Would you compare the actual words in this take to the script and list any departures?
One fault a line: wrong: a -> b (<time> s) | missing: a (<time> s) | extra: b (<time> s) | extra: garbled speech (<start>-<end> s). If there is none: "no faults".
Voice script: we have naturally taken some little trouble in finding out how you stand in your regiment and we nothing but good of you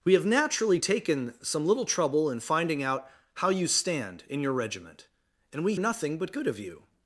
no faults